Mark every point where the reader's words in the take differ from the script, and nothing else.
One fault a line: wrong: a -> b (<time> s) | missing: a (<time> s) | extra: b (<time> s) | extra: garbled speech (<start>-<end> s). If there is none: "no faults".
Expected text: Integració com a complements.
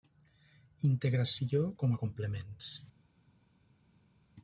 no faults